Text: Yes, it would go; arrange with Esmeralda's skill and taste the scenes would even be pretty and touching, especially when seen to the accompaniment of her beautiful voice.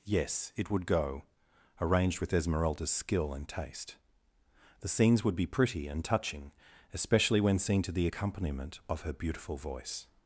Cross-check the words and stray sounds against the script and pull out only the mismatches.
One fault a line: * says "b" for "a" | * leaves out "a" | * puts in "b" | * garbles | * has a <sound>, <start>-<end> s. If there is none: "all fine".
* says "arranged" for "arrange"
* leaves out "even"